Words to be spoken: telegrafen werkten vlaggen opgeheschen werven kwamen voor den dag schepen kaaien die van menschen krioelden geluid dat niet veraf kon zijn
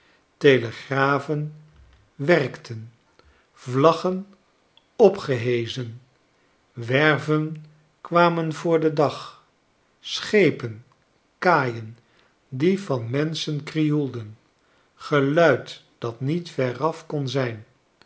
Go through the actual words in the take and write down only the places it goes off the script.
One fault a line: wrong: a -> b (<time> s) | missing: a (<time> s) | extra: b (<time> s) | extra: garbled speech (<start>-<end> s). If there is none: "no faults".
no faults